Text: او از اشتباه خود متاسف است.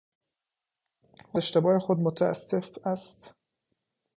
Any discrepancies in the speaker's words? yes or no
yes